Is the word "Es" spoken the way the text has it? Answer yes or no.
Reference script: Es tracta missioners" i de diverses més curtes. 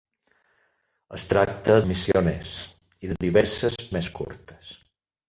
yes